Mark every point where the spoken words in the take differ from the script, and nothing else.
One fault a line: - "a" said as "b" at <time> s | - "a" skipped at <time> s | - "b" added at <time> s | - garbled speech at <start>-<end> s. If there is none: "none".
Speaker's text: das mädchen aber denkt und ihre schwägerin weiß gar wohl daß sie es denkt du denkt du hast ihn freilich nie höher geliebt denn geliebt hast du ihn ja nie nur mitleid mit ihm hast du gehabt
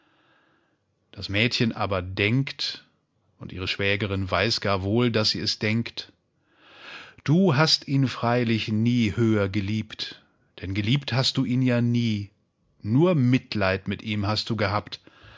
- "denkt du" skipped at 7.6 s